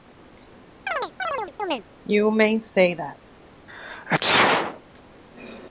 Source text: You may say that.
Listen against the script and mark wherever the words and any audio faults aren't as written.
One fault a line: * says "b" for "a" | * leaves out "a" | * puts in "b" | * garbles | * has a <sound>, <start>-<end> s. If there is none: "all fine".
* has a chirp, 0.9-1.8 s
* has a sneeze, 3.7-4.8 s